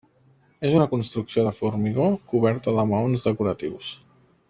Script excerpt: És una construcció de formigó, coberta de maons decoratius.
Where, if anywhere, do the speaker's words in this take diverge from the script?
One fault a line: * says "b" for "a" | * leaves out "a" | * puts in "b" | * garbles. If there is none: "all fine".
all fine